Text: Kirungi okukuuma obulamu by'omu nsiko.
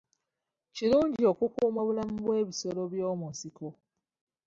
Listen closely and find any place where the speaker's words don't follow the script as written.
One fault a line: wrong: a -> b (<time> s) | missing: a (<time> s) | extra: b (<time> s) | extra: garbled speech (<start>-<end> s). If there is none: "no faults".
extra: bw'ebisolo (2.2 s)